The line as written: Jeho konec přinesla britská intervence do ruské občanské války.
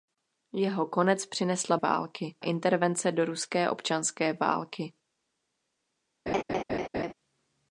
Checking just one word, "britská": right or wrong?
wrong